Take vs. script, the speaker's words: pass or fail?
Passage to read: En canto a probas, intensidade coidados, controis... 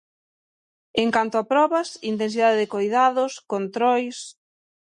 fail